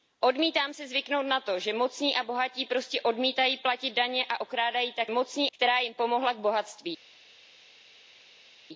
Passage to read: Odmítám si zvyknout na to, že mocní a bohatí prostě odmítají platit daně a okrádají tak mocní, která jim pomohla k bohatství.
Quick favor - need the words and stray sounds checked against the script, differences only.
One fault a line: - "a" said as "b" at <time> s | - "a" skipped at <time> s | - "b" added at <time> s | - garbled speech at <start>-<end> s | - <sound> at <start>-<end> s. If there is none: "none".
none